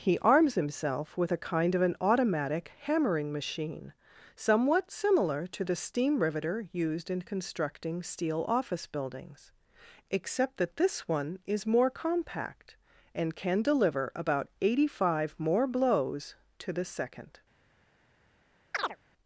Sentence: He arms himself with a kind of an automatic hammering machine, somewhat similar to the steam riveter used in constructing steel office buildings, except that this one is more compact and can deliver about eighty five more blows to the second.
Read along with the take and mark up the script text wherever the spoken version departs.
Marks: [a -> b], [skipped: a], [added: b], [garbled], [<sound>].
He arms himself with a kind of an automatic hammering machine, somewhat similar to the steam riveter used in constructing steel office buildings, except that this one is more compact and can deliver about eighty five more blows to the second. [chirp]